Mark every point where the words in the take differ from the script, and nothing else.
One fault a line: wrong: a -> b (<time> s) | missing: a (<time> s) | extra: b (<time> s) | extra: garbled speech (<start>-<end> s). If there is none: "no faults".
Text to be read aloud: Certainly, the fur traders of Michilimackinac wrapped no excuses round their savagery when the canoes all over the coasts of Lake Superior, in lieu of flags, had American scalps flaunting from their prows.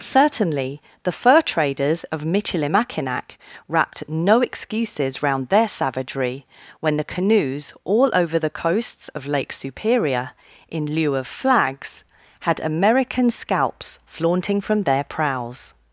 no faults